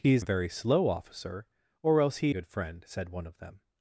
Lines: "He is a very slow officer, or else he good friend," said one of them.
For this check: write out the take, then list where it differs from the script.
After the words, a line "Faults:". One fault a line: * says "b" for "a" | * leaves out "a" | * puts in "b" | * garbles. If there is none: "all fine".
"He is a very slow officer, or else he good friend," said one of them.
Faults:
all fine